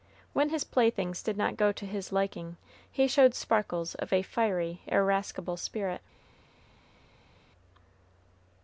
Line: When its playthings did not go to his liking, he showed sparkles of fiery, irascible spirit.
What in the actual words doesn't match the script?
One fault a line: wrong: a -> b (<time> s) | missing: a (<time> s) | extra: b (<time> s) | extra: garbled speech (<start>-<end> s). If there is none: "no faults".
wrong: its -> his (0.5 s)
extra: a (4.1 s)